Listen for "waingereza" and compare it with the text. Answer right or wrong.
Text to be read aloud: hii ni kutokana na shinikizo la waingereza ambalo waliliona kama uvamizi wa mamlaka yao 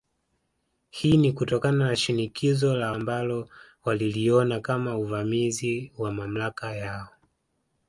wrong